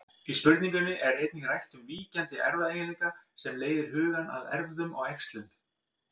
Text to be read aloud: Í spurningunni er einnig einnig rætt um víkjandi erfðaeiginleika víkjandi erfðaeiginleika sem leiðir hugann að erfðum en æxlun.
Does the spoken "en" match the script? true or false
false